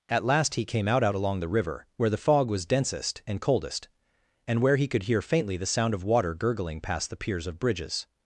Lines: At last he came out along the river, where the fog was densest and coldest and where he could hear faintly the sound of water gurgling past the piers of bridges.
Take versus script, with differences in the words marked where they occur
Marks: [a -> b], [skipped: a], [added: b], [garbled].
At last he came out [added: out] along the river, where the fog was densest and coldest and where he could hear faintly the sound of water gurgling past the piers of bridges.